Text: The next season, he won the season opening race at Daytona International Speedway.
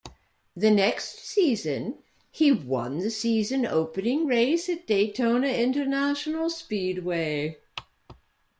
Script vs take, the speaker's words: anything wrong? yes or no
no